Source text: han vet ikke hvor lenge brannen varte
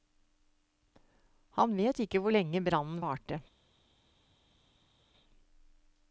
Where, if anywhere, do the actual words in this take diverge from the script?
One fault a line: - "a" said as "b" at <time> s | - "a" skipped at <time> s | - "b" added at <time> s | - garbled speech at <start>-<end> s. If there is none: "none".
none